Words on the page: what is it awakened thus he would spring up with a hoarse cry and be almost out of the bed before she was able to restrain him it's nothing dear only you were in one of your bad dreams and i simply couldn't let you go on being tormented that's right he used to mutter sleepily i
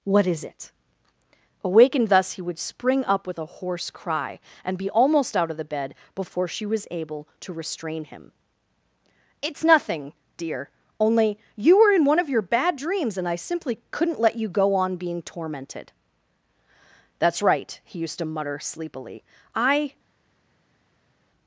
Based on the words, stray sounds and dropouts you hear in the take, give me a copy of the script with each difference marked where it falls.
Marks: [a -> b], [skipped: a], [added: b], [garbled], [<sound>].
what is it awakened thus he would spring up with a hoarse cry and be almost out of the bed before she was able to restrain him it's nothing dear only you were in one of your bad dreams and i simply couldn't let you go on being tormented that's right he used to mutter sleepily i